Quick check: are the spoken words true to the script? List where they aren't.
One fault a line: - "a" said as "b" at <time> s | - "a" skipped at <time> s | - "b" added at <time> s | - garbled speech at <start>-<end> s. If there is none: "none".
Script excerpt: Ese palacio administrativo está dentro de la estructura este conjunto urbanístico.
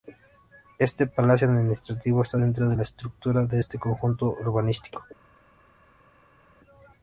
- "Ese" said as "Este" at 0.8 s
- "de" added at 3.5 s